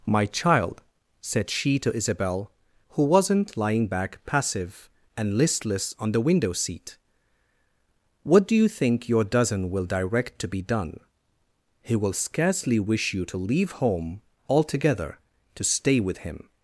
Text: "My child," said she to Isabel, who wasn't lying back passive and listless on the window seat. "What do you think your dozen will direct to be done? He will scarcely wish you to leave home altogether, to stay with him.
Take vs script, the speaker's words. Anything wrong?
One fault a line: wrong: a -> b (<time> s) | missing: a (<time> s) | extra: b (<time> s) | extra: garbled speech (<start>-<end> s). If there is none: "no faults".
no faults